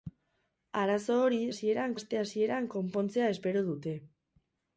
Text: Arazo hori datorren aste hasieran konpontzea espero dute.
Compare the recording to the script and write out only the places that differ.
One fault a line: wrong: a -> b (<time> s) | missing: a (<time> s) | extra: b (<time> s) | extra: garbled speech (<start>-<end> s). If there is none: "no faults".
wrong: datorren -> hasieran (1.5 s)